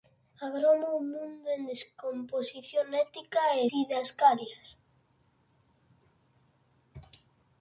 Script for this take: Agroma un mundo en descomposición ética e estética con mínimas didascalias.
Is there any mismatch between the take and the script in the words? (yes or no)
yes